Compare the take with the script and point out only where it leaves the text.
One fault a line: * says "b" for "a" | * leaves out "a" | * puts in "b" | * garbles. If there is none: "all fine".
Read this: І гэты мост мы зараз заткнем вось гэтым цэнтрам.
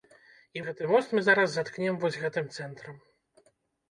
all fine